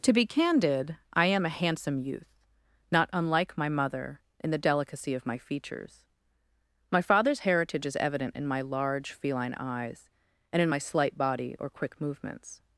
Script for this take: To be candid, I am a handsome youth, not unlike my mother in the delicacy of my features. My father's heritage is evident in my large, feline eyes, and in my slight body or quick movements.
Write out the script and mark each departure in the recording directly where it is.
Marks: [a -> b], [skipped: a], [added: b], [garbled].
To be candid, I am a handsome youth, not unlike my mother in the delicacy of my features. My father's heritage is evident in my large, feline eyes, and in my slight body or quick movements.